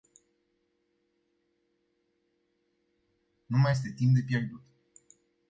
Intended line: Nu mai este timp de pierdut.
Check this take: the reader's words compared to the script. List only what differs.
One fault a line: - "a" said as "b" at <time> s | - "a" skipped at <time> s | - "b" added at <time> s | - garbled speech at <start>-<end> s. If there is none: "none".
none